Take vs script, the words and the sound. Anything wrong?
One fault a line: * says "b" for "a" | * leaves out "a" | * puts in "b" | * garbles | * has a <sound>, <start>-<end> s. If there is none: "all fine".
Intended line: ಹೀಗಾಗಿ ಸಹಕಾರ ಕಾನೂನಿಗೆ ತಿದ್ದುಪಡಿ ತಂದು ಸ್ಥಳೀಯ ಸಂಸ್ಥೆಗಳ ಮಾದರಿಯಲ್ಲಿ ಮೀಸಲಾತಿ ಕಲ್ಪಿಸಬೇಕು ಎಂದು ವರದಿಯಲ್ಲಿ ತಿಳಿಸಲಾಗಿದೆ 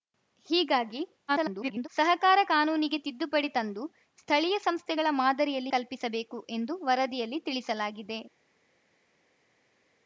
* garbles
* leaves out "ಮೀಸಲಾತಿ"